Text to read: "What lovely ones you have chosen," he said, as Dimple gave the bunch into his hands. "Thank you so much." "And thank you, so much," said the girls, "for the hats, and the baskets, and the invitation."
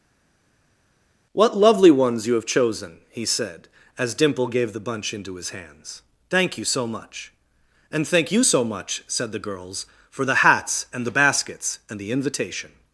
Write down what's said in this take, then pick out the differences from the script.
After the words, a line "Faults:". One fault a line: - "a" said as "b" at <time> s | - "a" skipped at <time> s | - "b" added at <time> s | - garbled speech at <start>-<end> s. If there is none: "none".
"What lovely ones you have chosen," he said, as Dimple gave the bunch into his hands. "Thank you so much." "And thank you, so much," said the girls, "for the hats, and the baskets, and the invitation."
Faults:
none